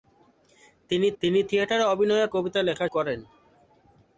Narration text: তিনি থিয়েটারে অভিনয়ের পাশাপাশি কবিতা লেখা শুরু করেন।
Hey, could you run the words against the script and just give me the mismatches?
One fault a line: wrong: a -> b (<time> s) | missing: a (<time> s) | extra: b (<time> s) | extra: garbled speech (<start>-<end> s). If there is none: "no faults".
extra: তিনি (1.2 s)
missing: পাশাপাশি (2.3 s)
missing: শুরু (2.9 s)